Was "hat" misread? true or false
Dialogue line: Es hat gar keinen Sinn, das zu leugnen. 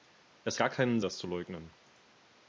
true